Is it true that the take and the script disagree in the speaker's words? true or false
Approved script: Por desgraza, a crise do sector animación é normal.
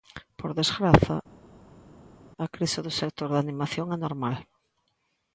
true